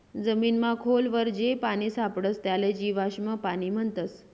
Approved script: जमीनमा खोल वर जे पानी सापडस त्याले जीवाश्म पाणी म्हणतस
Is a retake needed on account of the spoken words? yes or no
no